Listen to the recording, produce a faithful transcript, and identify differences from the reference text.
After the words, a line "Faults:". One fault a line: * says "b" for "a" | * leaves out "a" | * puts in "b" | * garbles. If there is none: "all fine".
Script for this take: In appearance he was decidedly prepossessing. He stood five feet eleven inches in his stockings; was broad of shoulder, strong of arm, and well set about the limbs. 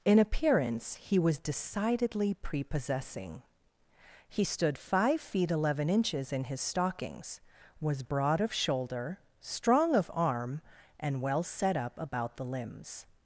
In appearance he was decidedly prepossessing. He stood five feet eleven inches in his stockings; was broad of shoulder, strong of arm, and well set up about the limbs.
Faults:
* puts in "up"